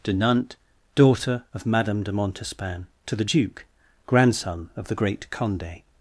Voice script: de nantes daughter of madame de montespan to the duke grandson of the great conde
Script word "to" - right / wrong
right